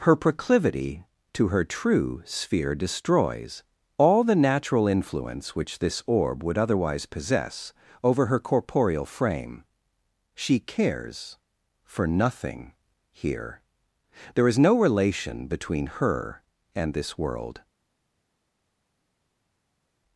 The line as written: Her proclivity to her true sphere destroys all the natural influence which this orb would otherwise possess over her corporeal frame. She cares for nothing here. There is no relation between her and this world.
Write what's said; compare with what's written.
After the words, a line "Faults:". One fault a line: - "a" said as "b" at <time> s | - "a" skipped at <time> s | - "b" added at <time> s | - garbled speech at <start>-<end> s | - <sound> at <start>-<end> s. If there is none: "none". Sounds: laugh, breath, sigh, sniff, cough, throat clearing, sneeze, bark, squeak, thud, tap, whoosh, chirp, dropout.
Her proclivity to her true sphere destroys all the natural influence which this orb would otherwise possess over her corporeal frame. She cares for nothing here. There is no relation between her and this world.
Faults:
none